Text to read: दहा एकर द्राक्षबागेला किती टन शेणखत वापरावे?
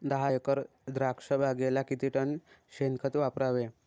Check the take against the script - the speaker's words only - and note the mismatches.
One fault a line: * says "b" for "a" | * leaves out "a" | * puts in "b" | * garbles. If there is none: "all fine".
all fine